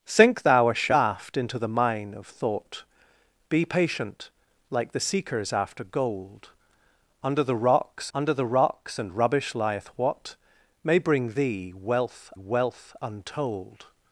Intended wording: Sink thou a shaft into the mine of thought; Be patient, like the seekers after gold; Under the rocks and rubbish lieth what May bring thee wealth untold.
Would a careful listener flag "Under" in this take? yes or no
no